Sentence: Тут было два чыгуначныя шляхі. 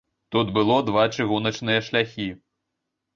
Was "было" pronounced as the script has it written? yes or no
yes